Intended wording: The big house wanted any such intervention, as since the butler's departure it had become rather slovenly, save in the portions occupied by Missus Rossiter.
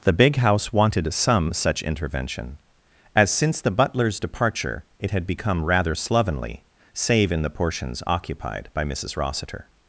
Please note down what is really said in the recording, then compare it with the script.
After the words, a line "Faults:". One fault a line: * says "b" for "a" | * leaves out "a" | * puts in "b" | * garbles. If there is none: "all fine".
The big house wanted some such intervention, as since the butler's departure it had become rather slovenly, save in the portions occupied by Missus Rossiter.
Faults:
* says "some" for "any"